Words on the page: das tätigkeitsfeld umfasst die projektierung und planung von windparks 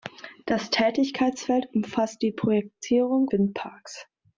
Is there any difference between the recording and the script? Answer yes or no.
yes